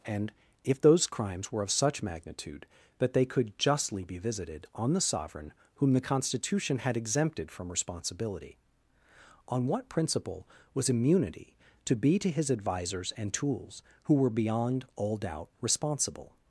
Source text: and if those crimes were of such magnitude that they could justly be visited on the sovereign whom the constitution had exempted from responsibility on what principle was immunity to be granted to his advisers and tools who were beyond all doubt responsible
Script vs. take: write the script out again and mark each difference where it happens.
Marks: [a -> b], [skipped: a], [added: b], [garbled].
and if those crimes were of such magnitude that they could justly be visited on the sovereign whom the constitution had exempted from responsibility on what principle was immunity to be [skipped: granted] to his advisers and tools who were beyond all doubt responsible